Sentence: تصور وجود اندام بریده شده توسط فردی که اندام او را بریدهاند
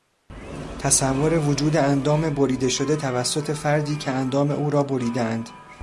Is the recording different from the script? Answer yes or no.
no